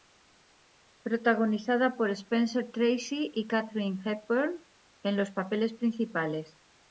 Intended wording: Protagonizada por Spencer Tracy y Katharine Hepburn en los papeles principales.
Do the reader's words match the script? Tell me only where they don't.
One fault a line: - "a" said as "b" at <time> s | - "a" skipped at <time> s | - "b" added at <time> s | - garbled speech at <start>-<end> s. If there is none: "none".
none